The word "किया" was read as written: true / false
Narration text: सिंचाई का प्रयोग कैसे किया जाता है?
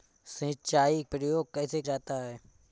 false